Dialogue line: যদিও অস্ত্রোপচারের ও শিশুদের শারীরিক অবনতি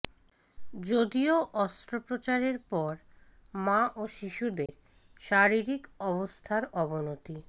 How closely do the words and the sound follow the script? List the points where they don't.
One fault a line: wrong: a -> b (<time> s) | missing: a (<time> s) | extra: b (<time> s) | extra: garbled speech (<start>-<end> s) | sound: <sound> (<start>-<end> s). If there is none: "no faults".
extra: পর মা (2.7 s)
sound: dropout (4.7-4.7 s)
extra: অবস্থার (6.1 s)